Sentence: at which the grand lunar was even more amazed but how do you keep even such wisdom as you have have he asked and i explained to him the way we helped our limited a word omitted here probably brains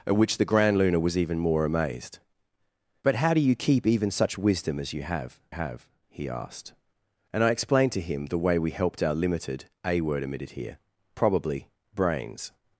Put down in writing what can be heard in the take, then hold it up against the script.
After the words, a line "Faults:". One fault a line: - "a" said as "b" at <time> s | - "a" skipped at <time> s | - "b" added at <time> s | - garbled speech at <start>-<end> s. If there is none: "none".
at which the grand lunar was even more amazed but how do you keep even such wisdom as you have have he asked and i explained to him the way we helped our limited a word omitted here probably brains
Faults:
none